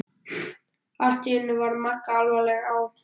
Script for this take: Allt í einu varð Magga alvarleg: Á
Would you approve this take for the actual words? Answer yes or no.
yes